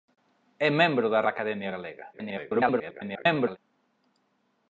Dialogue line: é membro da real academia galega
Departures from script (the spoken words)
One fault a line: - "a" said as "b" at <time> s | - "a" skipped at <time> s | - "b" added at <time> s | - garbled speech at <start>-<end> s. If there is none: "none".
- "real" skipped at 1.2 s
- garbled speech at 2.1-3.6 s